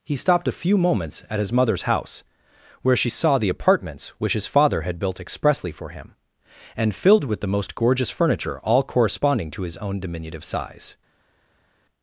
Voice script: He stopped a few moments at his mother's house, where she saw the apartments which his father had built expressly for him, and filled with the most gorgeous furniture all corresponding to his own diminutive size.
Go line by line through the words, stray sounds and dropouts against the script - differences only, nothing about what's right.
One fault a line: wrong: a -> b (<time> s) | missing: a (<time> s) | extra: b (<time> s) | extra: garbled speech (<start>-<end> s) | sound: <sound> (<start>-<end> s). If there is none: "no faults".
no faults